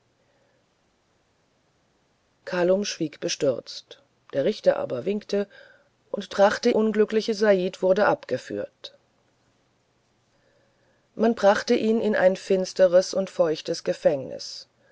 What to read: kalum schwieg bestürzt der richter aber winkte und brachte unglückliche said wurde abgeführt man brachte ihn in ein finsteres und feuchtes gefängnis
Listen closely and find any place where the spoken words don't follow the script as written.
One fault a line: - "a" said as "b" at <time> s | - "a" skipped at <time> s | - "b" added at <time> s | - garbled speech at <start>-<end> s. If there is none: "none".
none